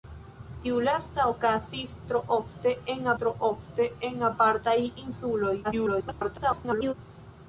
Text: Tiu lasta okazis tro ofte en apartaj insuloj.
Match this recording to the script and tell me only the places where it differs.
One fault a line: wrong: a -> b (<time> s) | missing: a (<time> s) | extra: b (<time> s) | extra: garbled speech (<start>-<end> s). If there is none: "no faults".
extra: tro ofte en (3.2 s)
extra: garbled speech (5.6-6.9 s)